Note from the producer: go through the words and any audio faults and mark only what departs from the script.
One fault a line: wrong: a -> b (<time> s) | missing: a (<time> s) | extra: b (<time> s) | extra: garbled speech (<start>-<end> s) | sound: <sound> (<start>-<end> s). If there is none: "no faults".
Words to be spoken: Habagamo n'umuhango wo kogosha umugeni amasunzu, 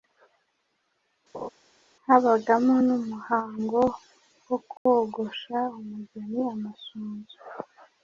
sound: laugh (1.3-1.5 s)
sound: dropout (4.8-4.9 s)